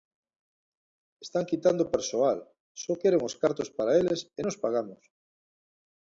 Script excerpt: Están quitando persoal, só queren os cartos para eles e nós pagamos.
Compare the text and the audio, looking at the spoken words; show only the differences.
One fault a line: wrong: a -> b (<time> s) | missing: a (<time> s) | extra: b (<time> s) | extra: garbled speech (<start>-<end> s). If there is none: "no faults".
no faults